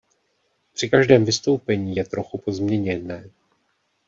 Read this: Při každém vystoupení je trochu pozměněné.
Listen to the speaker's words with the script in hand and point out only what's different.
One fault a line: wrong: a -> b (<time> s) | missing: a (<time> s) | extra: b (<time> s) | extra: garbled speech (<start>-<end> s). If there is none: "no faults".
no faults